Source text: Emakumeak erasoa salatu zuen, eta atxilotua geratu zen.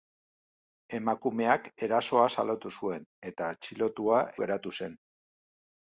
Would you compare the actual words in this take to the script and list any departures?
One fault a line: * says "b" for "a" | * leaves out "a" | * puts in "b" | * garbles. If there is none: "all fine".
all fine